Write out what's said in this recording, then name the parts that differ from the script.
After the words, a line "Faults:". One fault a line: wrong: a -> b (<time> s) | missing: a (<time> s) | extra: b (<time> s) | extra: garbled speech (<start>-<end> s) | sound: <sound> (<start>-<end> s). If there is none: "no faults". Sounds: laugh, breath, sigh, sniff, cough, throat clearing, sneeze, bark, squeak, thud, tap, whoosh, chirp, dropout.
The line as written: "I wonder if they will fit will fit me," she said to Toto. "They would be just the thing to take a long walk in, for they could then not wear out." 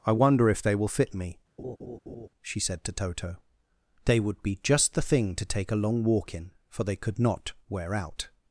"I wonder if they will fit me," she said to Toto. "They would be just the thing to take a long walk in, for they could not wear out."
Faults:
missing: will fit (1.1 s)
sound: laugh (1.6-2.3 s)
missing: then (7.2 s)